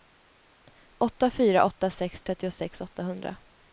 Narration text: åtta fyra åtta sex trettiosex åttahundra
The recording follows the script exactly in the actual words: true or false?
true